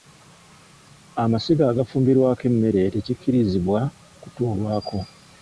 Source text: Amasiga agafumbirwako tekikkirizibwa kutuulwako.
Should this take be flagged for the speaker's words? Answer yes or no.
yes